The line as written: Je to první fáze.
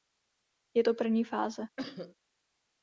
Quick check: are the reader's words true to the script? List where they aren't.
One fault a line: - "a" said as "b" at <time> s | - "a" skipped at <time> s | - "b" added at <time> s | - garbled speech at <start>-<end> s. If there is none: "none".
none